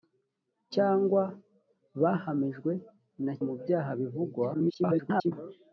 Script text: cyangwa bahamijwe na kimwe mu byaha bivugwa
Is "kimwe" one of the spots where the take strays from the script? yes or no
yes